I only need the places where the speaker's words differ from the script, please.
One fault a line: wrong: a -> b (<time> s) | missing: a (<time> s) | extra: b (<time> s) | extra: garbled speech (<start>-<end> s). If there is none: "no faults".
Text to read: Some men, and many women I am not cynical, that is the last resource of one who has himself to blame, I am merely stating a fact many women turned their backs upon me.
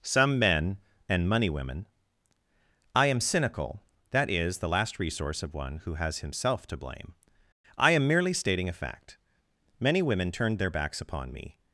wrong: many -> money (1.3 s)
missing: not (3.2 s)